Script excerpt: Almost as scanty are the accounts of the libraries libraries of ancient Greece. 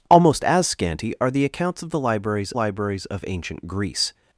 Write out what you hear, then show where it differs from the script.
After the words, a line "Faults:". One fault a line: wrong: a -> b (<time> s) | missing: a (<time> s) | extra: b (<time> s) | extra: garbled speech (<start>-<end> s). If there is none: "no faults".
Almost as scanty are the accounts of the libraries libraries of ancient Greece.
Faults:
no faults